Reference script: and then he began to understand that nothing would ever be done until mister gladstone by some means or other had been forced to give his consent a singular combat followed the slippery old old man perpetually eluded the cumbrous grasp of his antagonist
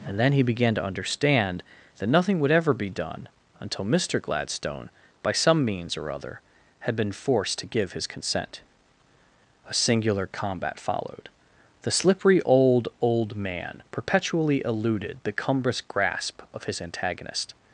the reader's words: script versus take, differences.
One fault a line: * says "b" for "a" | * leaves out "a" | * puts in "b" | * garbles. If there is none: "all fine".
all fine